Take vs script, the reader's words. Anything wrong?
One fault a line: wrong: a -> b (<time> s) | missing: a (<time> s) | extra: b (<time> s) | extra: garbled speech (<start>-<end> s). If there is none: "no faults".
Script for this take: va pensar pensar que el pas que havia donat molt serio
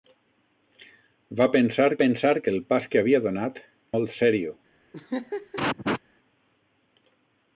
no faults